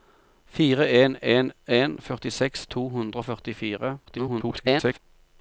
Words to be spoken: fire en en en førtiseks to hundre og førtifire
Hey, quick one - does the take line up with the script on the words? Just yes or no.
no